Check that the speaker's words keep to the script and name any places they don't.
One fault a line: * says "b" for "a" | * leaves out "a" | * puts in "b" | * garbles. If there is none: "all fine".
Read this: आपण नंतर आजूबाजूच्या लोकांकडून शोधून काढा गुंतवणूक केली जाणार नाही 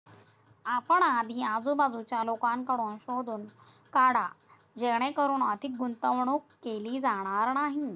* says "आधी" for "नंतर"
* puts in "जेणेकरून अधिक"